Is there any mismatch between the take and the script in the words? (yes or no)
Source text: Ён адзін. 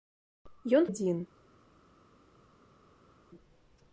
no